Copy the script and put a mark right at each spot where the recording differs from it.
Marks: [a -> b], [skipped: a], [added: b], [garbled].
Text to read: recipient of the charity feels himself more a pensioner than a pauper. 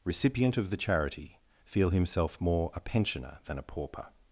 recipient of the charity [feels -> feel] himself more a pensioner than a pauper.